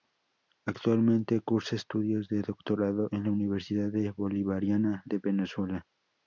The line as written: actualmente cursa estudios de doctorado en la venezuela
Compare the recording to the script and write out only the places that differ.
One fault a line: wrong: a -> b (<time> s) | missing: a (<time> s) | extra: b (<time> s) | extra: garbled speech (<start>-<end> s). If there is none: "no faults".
extra: universidad bolivariana de (3.3 s)